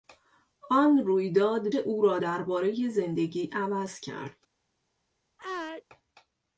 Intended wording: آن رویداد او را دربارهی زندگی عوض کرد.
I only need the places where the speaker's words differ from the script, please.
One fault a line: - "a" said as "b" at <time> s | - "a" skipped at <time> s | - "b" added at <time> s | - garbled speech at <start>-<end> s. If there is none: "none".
none